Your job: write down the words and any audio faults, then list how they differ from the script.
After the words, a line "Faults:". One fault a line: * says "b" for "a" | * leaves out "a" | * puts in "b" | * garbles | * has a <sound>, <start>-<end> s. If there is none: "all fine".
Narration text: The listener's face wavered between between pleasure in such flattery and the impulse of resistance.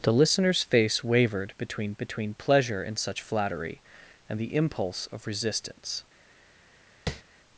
The listener's face wavered between between pleasure in such flattery and the impulse of resistance.
Faults:
* has a tap, 7.1-7.2 s